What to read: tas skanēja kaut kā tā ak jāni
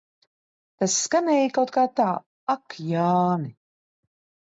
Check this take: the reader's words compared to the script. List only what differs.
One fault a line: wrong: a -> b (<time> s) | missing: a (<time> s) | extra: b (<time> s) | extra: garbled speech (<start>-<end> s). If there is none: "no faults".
no faults